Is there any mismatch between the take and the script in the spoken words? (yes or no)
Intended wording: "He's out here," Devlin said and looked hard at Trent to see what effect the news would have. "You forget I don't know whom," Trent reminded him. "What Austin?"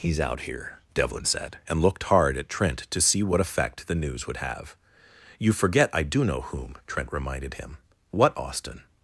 yes